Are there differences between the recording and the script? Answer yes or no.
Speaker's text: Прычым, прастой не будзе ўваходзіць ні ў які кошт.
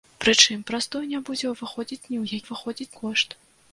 yes